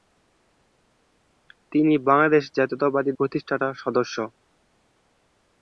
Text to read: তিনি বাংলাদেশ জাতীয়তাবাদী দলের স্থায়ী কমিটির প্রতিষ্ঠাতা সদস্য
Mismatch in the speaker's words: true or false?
true